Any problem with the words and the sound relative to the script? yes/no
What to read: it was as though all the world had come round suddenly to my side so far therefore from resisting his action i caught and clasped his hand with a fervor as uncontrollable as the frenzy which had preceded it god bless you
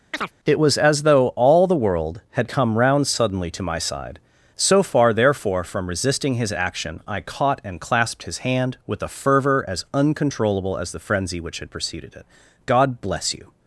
yes